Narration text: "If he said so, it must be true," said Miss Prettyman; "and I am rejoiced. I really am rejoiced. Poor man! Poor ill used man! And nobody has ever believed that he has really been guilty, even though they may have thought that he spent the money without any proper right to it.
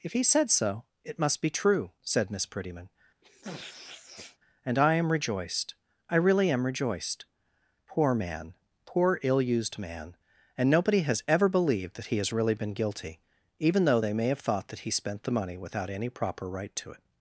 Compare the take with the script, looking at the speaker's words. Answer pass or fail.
pass